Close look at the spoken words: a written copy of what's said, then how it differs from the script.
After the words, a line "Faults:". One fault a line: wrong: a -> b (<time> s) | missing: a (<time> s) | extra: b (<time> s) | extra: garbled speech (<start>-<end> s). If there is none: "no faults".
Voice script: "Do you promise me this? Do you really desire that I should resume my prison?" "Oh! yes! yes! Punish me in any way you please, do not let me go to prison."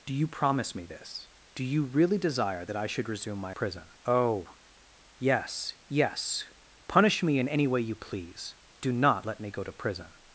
"Do you promise me this? Do you really desire that I should resume my prison?" "Oh! yes! yes! Punish me in any way you please, do not let me go to prison."
Faults:
no faults